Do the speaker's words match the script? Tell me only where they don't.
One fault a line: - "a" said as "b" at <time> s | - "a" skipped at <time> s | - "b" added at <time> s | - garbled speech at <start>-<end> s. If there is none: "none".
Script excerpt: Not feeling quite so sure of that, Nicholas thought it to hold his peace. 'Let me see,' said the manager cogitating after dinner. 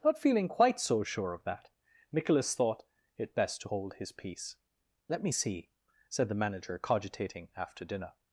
- "best" added at 3.4 s